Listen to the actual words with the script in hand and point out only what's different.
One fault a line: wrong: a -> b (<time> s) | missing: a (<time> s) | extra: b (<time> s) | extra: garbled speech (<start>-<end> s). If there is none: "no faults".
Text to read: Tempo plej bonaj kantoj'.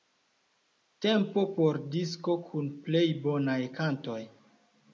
extra: por disko kun (1.6 s)